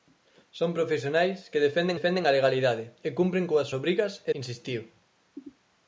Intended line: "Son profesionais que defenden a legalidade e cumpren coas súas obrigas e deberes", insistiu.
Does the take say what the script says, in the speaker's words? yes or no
no